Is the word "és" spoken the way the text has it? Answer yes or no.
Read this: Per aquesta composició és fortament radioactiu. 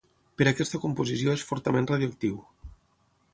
yes